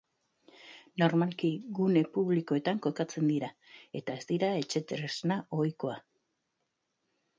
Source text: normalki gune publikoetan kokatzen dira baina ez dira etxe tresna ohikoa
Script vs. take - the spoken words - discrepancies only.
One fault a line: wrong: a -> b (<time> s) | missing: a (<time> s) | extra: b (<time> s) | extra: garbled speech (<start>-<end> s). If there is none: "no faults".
wrong: baina -> eta (4.0 s)